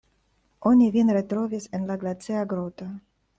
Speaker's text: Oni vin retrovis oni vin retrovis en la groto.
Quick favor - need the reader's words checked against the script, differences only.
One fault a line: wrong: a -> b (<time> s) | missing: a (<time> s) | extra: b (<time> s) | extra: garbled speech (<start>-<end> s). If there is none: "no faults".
missing: oni vin retrovis (1.7 s)
extra: glacia (2.0 s)